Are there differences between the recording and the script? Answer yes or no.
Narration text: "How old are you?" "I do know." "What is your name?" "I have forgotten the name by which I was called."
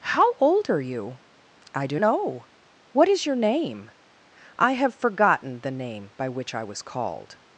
no